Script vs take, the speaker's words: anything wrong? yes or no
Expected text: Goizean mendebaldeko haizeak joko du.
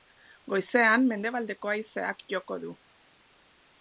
no